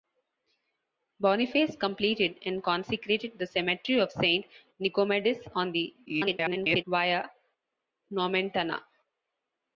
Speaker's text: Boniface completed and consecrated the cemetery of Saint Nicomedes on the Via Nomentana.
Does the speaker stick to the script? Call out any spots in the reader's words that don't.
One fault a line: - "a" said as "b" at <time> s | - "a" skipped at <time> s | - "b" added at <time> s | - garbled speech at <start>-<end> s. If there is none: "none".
- garbled speech at 6.1-6.8 s